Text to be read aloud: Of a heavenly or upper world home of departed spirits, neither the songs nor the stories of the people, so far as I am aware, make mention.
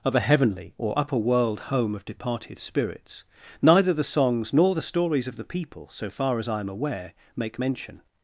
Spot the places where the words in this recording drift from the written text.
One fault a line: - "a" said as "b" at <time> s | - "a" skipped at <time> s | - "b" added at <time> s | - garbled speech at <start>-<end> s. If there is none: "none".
none